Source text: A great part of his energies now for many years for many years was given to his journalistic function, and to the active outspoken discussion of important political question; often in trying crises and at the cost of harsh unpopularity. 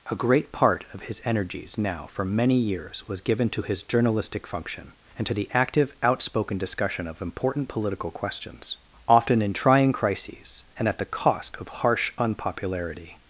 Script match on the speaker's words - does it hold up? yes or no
no